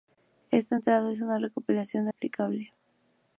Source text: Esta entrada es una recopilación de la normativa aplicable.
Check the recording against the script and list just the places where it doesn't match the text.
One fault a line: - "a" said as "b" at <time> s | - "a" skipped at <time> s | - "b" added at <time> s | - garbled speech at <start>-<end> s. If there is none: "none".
- "la normativa" skipped at 2.1 s